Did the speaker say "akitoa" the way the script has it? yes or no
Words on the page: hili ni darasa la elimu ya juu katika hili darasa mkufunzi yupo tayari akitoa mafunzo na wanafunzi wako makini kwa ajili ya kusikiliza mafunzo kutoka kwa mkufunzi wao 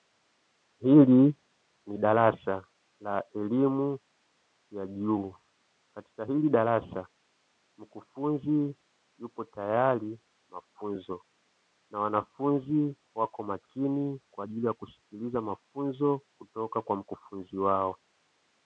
no